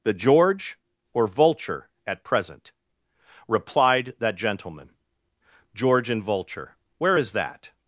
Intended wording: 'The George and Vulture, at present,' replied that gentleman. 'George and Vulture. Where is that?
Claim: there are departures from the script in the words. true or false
true